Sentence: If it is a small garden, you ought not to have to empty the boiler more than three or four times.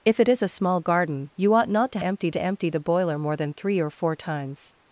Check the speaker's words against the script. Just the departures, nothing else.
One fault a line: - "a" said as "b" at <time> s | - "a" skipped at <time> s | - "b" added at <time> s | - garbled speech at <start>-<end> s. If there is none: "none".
- "have" said as "empty" at 2.0 s